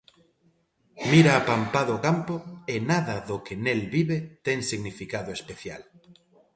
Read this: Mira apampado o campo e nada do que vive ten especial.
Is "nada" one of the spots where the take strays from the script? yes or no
no